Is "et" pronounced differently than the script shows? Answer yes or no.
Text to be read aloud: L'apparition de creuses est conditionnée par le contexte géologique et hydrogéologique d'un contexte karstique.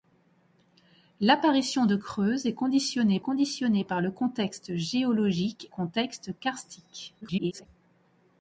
yes